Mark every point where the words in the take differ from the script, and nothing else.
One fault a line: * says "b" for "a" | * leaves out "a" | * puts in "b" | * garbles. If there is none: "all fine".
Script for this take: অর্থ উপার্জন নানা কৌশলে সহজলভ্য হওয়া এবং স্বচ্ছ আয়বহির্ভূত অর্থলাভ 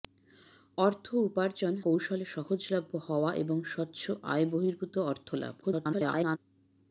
* leaves out "নানা"
* garbles